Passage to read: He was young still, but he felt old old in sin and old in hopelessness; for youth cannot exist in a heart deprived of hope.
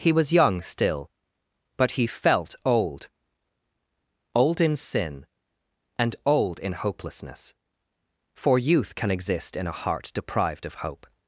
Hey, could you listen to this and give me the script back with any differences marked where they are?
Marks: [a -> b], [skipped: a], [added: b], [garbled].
He was young still, but he felt old old in sin and old in hopelessness; for youth [cannot -> can] exist in a heart deprived of hope.